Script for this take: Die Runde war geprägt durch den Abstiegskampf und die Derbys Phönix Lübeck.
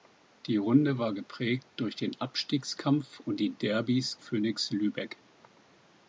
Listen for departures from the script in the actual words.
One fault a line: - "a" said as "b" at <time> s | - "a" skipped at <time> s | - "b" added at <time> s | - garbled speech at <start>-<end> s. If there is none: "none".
none